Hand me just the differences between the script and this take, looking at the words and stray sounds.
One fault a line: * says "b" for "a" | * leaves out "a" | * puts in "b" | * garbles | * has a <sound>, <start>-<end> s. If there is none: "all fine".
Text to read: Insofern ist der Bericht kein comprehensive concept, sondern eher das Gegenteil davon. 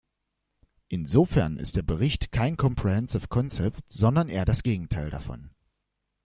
all fine